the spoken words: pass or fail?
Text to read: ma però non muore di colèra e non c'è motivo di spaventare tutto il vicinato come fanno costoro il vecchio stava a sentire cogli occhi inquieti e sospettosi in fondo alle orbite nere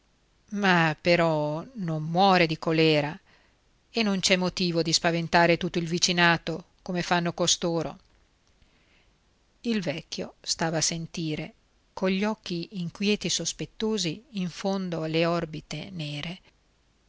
pass